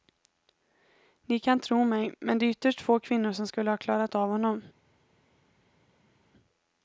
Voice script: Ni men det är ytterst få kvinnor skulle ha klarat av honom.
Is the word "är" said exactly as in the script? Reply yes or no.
yes